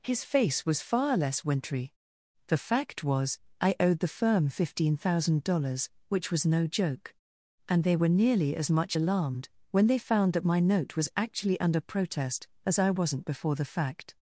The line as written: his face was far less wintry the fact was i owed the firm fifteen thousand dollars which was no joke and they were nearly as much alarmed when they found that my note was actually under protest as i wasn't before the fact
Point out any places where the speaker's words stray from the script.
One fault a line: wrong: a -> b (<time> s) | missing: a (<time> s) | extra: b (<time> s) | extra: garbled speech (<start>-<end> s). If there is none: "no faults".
no faults